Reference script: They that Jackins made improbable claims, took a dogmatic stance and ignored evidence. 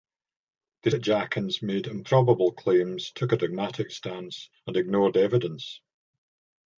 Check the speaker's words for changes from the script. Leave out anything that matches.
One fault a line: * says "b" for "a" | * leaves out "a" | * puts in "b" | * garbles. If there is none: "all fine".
all fine